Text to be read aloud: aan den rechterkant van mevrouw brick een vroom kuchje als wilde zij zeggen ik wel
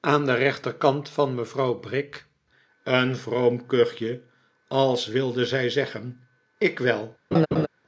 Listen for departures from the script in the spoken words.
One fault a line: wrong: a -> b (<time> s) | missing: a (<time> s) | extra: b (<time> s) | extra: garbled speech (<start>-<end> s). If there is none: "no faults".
no faults